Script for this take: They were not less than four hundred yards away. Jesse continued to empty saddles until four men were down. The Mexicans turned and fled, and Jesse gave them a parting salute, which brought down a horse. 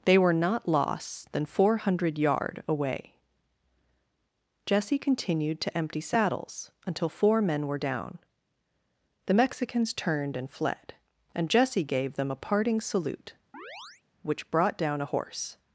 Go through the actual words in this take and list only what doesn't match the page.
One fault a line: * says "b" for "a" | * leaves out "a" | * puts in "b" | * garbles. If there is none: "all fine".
* says "loss" for "less"
* says "yard" for "yards"